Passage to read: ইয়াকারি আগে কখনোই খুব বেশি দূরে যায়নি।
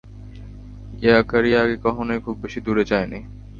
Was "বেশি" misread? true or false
false